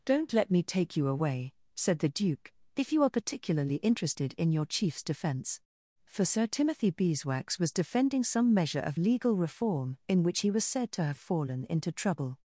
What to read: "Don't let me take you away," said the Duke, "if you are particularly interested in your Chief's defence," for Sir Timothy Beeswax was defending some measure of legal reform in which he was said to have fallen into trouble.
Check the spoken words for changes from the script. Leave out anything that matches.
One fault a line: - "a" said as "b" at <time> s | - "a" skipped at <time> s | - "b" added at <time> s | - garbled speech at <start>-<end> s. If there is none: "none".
none